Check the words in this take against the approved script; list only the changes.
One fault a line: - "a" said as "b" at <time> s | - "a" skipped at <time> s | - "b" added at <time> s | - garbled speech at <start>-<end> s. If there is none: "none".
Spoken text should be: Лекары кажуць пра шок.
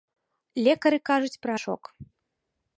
none